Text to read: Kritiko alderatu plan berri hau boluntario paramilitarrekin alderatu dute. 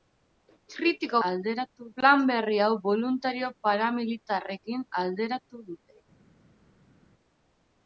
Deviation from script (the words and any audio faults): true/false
false